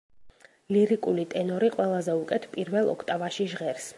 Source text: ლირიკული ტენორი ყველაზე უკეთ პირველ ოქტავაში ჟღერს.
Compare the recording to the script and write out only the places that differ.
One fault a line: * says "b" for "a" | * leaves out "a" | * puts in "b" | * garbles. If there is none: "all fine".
all fine